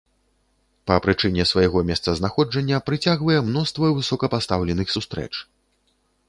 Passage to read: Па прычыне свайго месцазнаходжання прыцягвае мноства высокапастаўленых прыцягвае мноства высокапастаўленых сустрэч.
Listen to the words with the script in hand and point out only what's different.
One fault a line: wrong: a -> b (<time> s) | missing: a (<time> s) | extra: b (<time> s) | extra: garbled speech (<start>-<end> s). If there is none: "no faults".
missing: прыцягвае мноства высокапастаўленых (4.9 s)